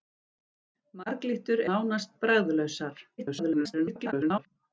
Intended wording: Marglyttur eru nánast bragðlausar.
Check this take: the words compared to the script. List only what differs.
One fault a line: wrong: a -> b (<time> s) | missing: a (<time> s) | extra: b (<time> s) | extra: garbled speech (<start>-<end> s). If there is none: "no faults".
missing: eru (1.6 s)
extra: garbled speech (3.2-4.5 s)